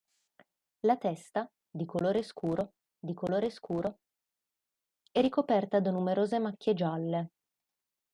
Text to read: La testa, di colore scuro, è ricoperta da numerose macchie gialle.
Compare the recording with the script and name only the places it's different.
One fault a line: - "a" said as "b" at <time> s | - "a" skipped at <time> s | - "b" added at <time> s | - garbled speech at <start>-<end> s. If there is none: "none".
- "di colore scuro" added at 3.0 s